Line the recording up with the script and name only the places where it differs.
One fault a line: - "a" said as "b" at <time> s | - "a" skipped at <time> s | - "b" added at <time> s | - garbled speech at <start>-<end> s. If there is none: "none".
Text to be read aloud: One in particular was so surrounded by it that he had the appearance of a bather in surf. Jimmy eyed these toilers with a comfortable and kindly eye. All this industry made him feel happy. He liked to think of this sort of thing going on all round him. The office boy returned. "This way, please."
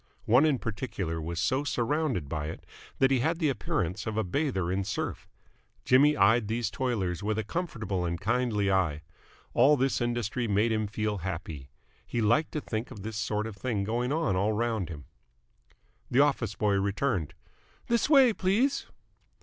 none